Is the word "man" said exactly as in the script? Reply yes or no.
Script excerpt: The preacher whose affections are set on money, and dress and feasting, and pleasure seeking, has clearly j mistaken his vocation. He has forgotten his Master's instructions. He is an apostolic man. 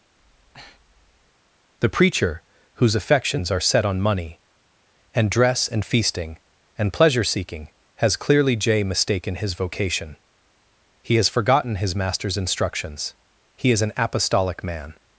yes